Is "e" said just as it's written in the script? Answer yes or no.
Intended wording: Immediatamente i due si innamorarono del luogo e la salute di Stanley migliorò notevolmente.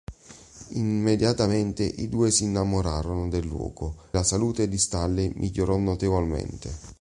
no